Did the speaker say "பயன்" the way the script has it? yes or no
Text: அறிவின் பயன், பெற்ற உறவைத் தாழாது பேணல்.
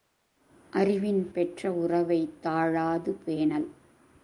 no